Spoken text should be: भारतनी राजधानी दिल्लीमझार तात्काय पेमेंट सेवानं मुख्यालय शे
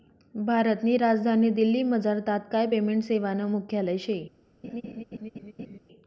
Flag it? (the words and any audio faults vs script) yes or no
yes